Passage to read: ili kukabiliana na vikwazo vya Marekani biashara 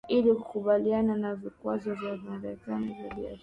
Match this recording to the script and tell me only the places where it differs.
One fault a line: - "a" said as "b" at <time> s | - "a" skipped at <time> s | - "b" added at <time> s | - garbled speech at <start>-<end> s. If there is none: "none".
- "vya" added at 2.9 s